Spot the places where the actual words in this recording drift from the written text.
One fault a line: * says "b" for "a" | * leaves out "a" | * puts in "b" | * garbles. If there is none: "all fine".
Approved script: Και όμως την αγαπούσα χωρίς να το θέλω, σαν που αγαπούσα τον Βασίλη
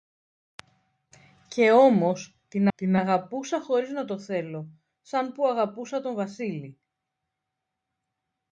* puts in "την"